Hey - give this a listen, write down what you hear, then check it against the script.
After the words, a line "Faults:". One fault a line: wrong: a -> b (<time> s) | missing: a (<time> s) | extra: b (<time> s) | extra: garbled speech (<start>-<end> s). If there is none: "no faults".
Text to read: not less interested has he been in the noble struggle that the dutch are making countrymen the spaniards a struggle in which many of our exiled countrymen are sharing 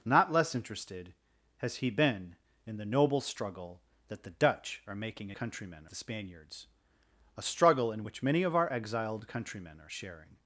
not less interested has he been in the noble struggle that the dutch are making countrymen the spaniards a struggle in which many of our exiled countrymen are sharing
Faults:
no faults